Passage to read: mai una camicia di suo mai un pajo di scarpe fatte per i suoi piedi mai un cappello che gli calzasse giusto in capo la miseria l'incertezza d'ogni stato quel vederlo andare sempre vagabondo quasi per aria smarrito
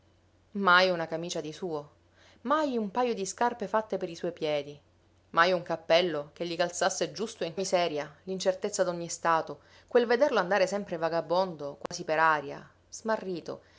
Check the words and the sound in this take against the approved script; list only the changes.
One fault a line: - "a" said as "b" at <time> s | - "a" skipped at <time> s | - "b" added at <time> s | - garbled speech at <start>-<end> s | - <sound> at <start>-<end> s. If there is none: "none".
- "capo la" skipped at 7.5 s
- dropout at 11.9-11.9 s